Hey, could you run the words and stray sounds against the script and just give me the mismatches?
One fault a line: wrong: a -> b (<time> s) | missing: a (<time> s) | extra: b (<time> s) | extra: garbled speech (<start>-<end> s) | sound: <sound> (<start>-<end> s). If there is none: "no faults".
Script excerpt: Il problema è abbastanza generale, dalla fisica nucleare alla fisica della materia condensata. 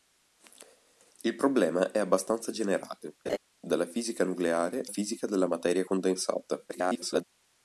sound: laugh (3.3-3.4 s)
missing: alla (4.8 s)
extra: garbled speech (6.7-7.2 s)